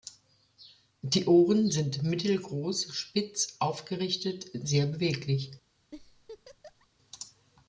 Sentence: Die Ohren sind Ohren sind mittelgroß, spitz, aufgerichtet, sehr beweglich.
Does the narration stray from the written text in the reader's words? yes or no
yes